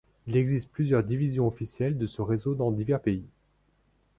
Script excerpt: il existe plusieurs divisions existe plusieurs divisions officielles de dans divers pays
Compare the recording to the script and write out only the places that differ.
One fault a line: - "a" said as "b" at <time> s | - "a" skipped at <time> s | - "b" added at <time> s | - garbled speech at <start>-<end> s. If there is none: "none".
- "existe plusieurs divisions officielles de" said as "officielles de ce réseau" at 1.4 s